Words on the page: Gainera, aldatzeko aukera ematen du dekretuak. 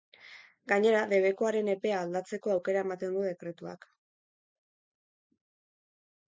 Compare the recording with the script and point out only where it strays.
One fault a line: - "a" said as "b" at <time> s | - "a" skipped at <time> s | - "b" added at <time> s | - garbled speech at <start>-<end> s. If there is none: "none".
- "debekuaren epea" added at 1.1 s